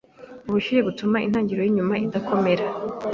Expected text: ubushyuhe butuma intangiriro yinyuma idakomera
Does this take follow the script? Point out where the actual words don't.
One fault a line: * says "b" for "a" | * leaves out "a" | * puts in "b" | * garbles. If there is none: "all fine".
all fine